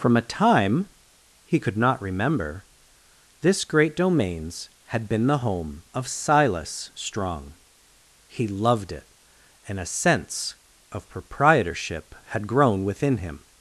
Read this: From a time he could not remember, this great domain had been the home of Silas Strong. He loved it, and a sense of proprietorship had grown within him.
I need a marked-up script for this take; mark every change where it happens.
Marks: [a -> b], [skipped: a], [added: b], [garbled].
From a time he could not remember, this great [domain -> domains] had been the home of Silas Strong. He loved it, and a sense of proprietorship had grown within him.